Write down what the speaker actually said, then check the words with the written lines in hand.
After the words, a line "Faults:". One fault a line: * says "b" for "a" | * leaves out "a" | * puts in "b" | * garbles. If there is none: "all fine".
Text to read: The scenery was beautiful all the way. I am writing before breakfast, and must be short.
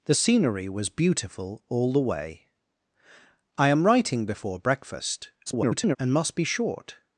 The scenery was beautiful all the way. I am writing before breakfast, [garbled] and must be short.
Faults:
* garbles